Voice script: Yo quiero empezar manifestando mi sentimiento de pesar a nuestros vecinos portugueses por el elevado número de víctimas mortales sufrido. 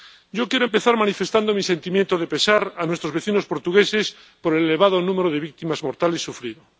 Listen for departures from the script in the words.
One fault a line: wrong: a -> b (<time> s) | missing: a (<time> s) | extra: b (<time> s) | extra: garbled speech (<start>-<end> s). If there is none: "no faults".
no faults